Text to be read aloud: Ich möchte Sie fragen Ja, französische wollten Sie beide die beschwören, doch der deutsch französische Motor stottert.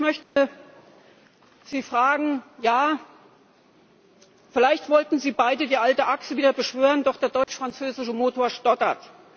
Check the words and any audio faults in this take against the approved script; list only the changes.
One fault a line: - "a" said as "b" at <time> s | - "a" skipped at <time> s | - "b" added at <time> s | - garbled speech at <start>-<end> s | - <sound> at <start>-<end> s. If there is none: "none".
- dropout at 0.2-0.4 s
- "französische" said as "vielleicht" at 4.5 s
- "alte Achse wieder" added at 5.8 s
- dropout at 7.4-7.5 s